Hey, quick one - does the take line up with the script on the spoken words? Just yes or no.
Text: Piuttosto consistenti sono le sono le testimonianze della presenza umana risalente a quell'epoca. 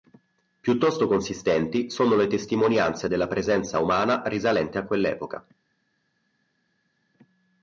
no